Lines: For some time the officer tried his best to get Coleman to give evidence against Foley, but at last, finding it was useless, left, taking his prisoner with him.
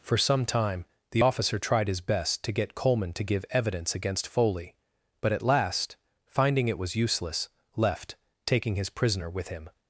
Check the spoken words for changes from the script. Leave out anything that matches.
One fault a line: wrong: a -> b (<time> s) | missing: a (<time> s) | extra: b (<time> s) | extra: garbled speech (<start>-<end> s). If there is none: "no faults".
no faults